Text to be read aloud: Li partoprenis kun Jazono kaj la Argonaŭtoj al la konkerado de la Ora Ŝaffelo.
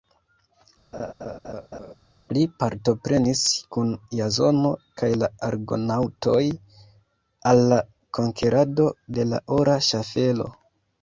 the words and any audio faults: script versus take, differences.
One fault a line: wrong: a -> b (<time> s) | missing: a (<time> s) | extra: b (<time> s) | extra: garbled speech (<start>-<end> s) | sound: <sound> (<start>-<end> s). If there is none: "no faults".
sound: laugh (0.9-1.9 s)